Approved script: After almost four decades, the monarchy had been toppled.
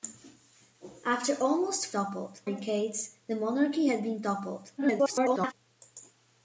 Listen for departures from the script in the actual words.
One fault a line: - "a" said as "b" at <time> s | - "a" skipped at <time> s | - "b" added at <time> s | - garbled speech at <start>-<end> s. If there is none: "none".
- "four" said as "toppled" at 1.9 s
- garbled speech at 4.8-5.5 s